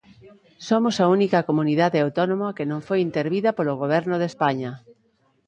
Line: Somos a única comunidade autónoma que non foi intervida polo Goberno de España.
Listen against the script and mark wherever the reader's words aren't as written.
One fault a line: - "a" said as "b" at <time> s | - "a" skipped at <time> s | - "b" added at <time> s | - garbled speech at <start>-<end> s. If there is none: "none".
none